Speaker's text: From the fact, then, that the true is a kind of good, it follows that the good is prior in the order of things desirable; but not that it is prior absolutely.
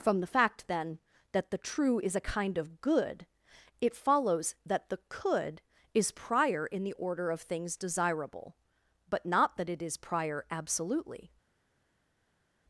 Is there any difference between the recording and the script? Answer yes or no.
yes